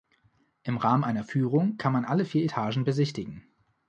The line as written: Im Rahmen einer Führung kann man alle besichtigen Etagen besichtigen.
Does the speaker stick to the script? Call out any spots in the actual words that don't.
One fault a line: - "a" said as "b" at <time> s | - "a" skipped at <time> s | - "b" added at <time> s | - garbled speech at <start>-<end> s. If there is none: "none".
- "besichtigen" said as "vier" at 2.2 s